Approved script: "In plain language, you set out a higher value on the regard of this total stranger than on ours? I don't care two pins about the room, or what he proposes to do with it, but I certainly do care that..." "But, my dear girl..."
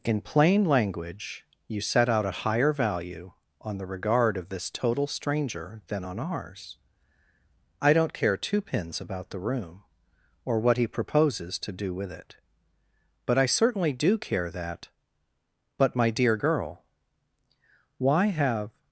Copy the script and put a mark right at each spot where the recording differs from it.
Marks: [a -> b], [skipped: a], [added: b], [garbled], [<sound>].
"In plain language, you set out a higher value on the regard of this total stranger than on ours? I don't care two pins about the room, or what he proposes to do with it, but I certainly do care that..." "But, my dear girl..." [added: Why have]